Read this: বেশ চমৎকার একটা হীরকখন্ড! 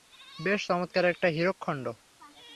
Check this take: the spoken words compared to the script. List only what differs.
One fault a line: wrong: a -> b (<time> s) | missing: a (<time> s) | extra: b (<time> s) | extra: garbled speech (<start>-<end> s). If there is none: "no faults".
no faults